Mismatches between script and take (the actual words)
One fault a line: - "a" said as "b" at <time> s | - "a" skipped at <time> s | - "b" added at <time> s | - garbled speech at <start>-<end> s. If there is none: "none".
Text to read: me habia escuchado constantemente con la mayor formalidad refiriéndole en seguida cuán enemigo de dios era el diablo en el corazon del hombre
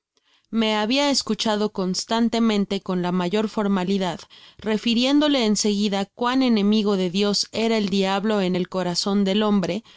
none